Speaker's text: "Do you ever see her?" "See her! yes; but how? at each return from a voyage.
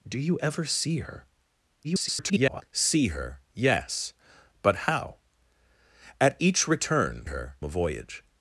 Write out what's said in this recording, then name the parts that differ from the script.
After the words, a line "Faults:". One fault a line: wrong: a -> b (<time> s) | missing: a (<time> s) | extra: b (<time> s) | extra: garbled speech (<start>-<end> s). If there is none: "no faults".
"Do you ever see her?" [garbled] "See her! yes; but how? at each return her a voyage.
Faults:
extra: garbled speech (1.8-2.6 s)
wrong: from -> her (7.2 s)